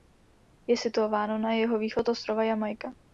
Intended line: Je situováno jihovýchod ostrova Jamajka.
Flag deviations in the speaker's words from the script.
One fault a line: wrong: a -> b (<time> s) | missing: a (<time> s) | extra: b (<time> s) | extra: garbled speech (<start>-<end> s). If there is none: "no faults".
extra: na (1.4 s)